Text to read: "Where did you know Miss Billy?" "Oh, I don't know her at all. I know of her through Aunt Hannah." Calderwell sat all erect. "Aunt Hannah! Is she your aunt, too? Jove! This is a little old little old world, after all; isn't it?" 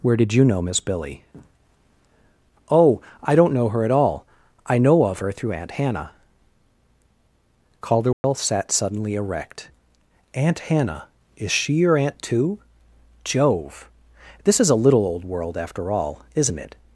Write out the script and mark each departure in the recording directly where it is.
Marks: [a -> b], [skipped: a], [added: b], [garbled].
"Where did you know Miss Billy?" "Oh, I don't know her at all. I know of her through Aunt Hannah." Calderwell sat [all -> suddenly] erect. "Aunt Hannah! Is she your aunt, too? Jove! This is a little old [skipped: little old] world, after all; isn't it?"